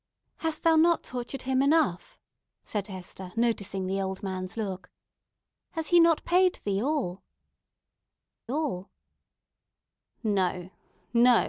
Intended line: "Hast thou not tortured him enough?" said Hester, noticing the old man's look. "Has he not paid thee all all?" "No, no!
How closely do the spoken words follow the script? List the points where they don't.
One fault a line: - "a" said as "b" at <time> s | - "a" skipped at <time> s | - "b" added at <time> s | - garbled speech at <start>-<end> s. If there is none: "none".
none